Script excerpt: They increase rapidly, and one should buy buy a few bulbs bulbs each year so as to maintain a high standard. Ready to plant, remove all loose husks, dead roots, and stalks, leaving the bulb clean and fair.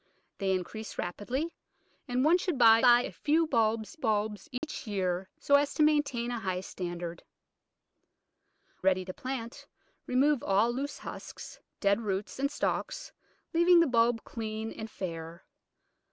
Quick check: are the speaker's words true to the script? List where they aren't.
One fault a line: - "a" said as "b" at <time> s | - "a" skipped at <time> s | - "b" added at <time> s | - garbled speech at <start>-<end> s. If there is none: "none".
none